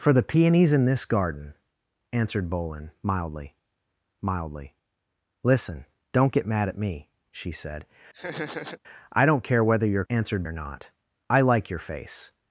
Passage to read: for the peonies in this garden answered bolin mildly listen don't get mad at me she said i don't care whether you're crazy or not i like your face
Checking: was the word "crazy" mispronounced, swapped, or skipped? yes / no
yes